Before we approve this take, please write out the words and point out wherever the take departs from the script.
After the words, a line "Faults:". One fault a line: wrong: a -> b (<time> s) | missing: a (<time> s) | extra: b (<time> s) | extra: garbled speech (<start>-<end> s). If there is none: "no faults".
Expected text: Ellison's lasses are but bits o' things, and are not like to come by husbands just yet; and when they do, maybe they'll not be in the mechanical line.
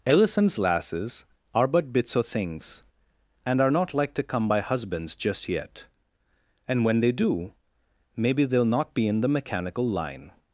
Ellison's lasses are but bits o' things, and are not like to come by husbands just yet; and when they do, maybe they'll not be in the mechanical line.
Faults:
no faults